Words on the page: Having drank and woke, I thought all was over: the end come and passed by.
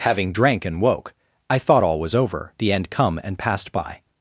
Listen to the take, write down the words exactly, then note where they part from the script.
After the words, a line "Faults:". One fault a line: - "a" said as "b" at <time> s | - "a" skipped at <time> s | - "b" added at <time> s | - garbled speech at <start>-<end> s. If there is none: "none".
Having drank and woke, I thought all was over: the end come and passed by.
Faults:
none